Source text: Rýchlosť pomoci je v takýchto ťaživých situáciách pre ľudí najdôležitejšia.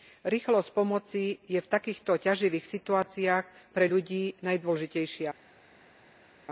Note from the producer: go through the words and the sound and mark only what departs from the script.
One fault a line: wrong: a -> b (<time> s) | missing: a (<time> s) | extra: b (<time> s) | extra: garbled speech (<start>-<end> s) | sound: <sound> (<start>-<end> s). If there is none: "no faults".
no faults